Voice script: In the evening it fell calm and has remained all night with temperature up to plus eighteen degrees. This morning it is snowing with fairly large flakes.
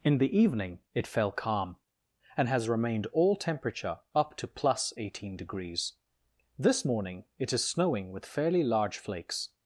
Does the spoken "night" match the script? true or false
false